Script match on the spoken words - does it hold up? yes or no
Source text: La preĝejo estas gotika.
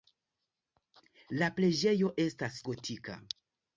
yes